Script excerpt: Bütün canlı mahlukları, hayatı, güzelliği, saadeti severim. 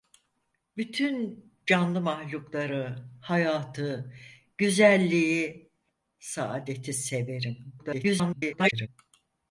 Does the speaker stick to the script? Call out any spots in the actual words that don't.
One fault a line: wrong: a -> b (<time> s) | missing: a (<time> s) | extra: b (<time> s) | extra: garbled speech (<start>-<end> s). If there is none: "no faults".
extra: garbled speech (7.8-8.9 s)